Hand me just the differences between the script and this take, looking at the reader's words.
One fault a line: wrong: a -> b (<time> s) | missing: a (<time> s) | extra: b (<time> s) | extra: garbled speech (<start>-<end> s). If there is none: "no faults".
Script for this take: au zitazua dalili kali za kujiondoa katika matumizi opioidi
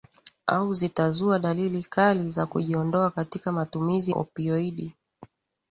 no faults